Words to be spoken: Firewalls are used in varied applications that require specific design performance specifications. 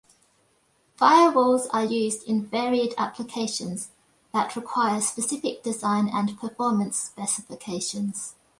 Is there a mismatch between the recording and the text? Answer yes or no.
yes